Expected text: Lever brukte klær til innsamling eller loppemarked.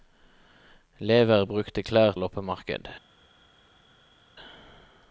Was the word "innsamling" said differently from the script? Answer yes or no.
yes